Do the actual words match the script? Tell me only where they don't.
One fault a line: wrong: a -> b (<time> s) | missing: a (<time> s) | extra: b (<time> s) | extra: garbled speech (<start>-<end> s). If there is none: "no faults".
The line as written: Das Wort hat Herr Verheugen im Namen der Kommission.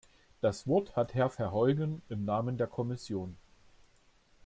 no faults